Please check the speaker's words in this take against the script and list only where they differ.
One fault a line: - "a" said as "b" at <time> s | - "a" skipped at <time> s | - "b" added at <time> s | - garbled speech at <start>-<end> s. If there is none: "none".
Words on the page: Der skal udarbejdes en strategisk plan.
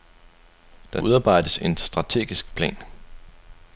- "skal" skipped at 1.0 s